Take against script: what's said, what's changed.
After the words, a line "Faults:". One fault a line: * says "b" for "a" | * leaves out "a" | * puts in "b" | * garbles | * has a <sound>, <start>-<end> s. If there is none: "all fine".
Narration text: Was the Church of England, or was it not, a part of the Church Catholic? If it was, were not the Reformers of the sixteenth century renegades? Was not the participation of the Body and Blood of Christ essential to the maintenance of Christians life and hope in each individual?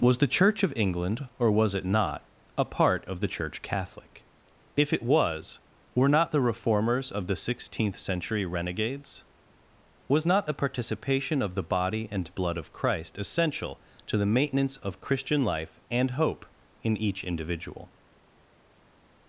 Was the Church of England, or was it not, a part of the Church Catholic? If it was, were not the Reformers of the sixteenth century renegades? Was not the participation of the Body and Blood of Christ essential to the maintenance of Christian life and hope in each individual?
Faults:
* says "Christian" for "Christians"